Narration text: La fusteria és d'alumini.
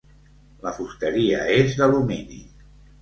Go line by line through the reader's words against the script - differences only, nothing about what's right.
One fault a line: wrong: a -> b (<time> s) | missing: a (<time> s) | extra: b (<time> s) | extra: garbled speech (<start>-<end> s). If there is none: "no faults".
no faults